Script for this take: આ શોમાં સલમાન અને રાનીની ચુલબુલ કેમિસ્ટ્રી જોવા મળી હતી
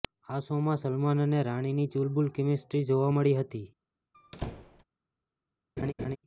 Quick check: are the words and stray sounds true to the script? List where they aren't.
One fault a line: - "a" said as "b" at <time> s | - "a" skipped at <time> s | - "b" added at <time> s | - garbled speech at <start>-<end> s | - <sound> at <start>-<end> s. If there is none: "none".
- squeak at 4.1-4.8 s
- laugh at 5.8-6.2 s